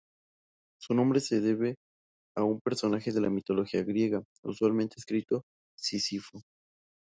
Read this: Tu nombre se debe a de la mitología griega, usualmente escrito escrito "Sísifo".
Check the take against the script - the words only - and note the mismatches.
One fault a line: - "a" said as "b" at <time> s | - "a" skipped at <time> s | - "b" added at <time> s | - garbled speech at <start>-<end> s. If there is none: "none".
- "Tu" said as "Su" at 0.8 s
- "un personaje" added at 2.4 s
- "escrito" skipped at 5.4 s